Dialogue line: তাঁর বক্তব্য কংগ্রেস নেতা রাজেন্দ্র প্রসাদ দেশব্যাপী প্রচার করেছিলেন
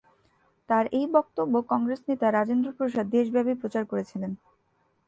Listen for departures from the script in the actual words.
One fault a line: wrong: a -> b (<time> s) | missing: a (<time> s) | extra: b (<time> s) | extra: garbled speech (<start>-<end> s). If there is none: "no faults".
extra: এই (0.9 s)